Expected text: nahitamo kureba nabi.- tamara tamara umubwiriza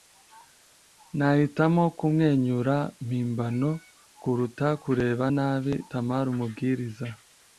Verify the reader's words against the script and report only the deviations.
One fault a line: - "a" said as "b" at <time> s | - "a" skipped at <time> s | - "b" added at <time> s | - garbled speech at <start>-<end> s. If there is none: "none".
- "kumwenyura mpimbano kuruta" added at 2.0 s
- "tamara" skipped at 6.3 s